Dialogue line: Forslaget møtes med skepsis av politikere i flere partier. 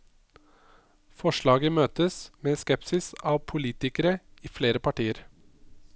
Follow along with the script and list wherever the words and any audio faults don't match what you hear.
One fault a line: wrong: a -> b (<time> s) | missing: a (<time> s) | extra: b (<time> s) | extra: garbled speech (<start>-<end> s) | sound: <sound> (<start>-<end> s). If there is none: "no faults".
no faults